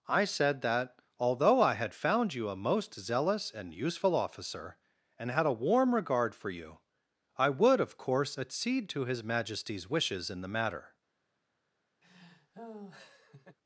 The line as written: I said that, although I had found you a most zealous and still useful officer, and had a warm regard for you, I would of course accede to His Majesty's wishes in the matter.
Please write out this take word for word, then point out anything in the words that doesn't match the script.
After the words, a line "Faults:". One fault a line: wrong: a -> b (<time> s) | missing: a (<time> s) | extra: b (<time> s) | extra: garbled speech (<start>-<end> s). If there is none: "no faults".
I said that, although I had found you a most zealous and useful officer, and had a warm regard for you, I would of course accede to His Majesty's wishes in the matter.
Faults:
missing: still (3.7 s)